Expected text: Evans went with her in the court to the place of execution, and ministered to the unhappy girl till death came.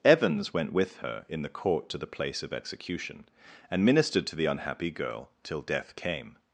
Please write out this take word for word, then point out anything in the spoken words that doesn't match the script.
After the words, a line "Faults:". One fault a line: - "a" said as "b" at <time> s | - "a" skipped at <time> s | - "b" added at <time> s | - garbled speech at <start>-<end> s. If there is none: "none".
Evans went with her in the court to the place of execution, and ministered to the unhappy girl till death came.
Faults:
none